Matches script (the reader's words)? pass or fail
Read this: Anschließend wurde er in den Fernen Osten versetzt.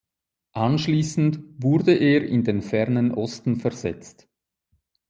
pass